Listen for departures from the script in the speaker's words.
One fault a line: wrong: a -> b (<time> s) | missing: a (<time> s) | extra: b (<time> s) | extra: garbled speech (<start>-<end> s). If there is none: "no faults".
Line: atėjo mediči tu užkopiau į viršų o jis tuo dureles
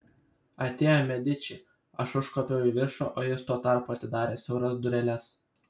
wrong: tu -> aš (2.0 s)
extra: tarpu atidarė siauras (3.7 s)